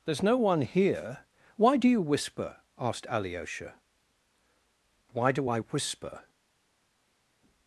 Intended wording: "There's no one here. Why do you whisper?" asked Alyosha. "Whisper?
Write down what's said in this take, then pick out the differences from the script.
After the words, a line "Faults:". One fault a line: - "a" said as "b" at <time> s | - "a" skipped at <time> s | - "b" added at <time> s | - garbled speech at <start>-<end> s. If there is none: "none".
"There's no one here. Why do you whisper?" asked Alyosha. "Why do I whisper?
Faults:
- "Why do I" added at 5.1 s